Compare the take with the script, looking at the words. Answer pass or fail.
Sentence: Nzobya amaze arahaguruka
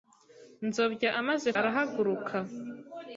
pass